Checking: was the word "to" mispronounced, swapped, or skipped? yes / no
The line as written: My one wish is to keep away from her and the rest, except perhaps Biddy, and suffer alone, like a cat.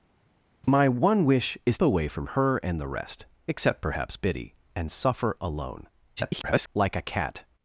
yes